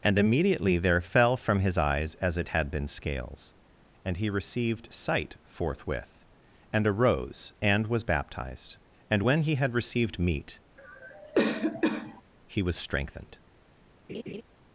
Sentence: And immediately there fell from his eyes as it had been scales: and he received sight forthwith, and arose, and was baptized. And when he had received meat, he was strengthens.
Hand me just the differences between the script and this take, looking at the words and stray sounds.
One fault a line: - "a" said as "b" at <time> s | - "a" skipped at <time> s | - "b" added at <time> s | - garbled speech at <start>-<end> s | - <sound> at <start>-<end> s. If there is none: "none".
- cough at 10.8-12.2 s
- "strengthens" said as "strengthened" at 12.8 s
- laugh at 14.1-14.4 s